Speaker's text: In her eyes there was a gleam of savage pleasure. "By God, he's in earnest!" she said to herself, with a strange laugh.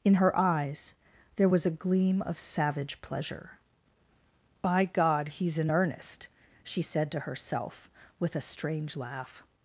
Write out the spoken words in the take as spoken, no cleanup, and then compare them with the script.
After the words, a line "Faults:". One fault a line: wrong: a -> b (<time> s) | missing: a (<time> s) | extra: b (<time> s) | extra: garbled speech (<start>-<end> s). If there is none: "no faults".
In her eyes there was a gleam of savage pleasure. "By God, he's in earnest!" she said to herself, with a strange laugh.
Faults:
no faults